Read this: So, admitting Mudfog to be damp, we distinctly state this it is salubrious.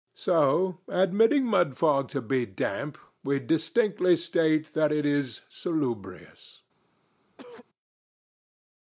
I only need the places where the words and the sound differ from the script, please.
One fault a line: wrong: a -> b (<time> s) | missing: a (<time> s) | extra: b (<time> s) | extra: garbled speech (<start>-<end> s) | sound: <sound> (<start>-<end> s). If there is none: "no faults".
wrong: this -> that (4.7 s)
sound: cough (7.3-7.7 s)